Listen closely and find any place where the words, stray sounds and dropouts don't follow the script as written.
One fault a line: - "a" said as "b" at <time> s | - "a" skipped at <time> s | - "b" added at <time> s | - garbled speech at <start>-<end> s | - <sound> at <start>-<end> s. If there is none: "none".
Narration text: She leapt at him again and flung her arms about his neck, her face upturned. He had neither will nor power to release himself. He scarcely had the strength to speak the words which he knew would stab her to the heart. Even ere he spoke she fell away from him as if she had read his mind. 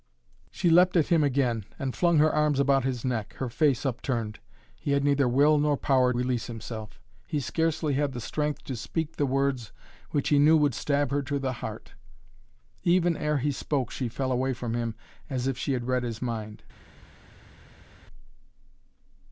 - "to" skipped at 6.1 s